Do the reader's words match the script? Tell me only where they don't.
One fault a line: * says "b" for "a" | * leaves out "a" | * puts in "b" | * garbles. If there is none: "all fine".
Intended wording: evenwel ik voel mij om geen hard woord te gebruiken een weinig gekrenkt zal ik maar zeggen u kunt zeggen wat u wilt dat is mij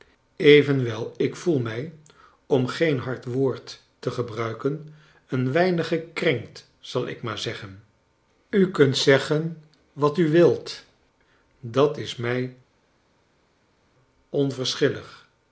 all fine